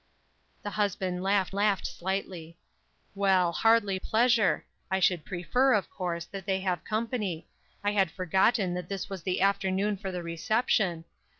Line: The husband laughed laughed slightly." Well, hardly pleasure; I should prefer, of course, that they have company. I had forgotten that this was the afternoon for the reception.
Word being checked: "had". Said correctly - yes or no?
yes